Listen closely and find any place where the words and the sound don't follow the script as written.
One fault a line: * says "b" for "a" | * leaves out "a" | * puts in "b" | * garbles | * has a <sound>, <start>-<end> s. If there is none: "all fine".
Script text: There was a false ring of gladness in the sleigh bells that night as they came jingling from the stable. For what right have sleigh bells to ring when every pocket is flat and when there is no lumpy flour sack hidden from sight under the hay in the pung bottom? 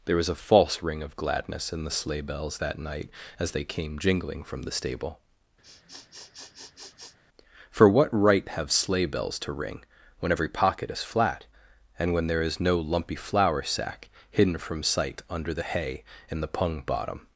* has a sniff, 5.6-7.2 s